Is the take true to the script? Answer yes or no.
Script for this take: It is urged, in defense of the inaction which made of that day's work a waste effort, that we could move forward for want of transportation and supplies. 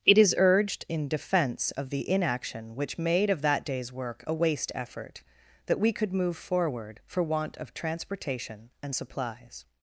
yes